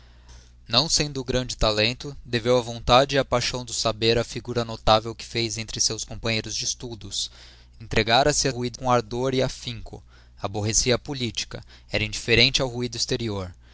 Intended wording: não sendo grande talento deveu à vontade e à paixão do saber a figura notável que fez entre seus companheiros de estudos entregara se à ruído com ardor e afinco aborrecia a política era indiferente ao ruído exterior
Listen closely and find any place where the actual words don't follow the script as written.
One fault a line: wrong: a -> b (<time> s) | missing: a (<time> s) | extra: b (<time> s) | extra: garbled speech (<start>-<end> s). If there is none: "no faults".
no faults